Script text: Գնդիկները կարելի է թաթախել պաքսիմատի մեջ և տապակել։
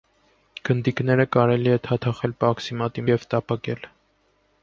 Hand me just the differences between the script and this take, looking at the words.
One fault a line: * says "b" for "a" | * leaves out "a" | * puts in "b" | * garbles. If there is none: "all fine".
* leaves out "մեջ"